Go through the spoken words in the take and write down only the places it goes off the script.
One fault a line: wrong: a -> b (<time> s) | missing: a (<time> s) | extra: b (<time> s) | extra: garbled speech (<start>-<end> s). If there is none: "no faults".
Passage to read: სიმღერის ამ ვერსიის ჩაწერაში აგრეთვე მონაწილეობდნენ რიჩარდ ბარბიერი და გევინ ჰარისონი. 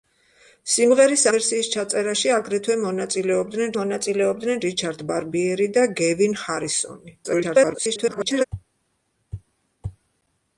missing: ამ (1.2 s)
extra: მონაწილეობდნენ (3.8 s)
extra: garbled speech (7.2-8.4 s)